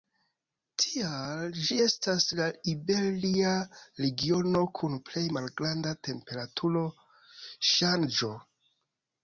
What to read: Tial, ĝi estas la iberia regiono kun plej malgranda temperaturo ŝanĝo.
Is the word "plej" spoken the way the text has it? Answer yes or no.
yes